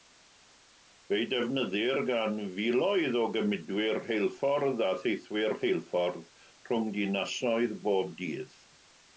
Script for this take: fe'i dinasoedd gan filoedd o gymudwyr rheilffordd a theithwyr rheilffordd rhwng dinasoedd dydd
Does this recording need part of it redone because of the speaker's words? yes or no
yes